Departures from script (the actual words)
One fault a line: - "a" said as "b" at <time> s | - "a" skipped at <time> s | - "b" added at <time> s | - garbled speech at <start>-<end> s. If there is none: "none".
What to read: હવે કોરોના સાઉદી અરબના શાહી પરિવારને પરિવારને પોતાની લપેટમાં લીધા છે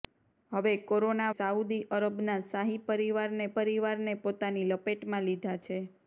none